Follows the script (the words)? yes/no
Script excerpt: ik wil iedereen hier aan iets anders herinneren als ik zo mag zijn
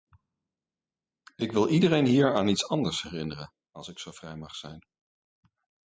no